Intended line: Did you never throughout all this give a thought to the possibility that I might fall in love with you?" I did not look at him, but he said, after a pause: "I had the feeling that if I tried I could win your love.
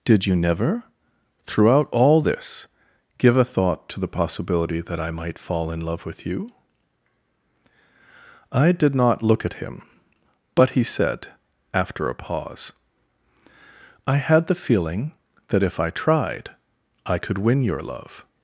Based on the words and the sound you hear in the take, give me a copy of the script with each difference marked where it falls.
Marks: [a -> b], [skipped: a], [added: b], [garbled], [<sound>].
Did you never throughout all this give a thought to the possibility that I might fall in love with you?" I did not look at him, but he said, after a pause: "I had the feeling that if I tried I could win your love.